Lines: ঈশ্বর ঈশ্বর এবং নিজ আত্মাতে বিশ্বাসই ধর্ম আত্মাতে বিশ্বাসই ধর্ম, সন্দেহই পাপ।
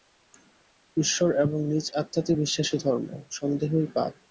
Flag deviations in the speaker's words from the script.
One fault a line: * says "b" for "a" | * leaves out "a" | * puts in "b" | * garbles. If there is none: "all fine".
* leaves out "ঈশ্বর"
* leaves out "আত্মাতে বিশ্বাসই ধর্ম"